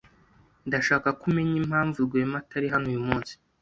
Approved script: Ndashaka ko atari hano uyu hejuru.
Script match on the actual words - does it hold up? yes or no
no